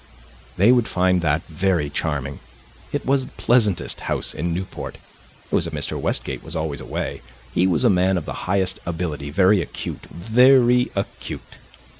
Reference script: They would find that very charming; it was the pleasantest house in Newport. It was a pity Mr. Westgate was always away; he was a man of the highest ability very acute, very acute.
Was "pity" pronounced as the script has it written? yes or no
no